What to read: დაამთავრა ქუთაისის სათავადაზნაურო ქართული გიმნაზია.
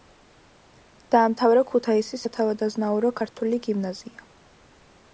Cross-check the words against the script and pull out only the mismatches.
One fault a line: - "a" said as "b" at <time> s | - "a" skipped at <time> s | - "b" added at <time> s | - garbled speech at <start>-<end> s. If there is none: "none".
none